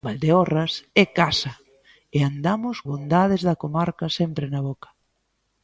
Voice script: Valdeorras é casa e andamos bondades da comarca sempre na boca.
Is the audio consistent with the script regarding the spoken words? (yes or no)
yes